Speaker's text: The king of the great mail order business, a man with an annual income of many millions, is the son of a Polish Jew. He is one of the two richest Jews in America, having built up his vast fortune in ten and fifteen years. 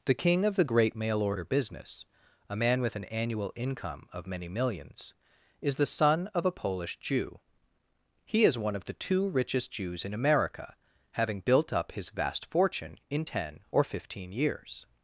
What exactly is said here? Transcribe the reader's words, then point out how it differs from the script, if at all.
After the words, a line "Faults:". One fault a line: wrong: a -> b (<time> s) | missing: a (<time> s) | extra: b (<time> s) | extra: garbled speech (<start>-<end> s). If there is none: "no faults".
The king of the great mail order business, a man with an annual income of many millions, is the son of a Polish Jew. He is one of the two richest Jews in America, having built up his vast fortune in ten or fifteen years.
Faults:
wrong: and -> or (13.7 s)